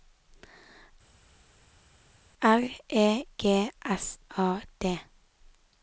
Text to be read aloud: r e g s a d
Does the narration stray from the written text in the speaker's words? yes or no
no